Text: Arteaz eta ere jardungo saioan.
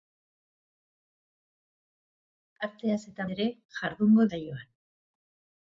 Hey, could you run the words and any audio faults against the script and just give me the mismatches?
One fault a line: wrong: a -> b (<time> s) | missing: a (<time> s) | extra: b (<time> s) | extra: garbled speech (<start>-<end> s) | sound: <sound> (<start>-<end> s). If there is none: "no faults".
no faults